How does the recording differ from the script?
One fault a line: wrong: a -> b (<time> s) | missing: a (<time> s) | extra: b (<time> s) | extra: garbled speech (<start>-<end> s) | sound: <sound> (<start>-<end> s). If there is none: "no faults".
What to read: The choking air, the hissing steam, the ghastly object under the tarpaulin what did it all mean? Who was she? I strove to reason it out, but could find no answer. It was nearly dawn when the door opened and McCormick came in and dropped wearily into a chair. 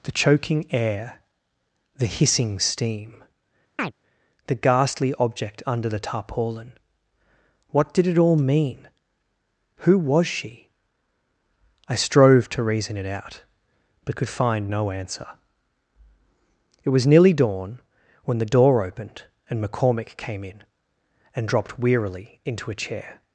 sound: chirp (3.8-3.9 s)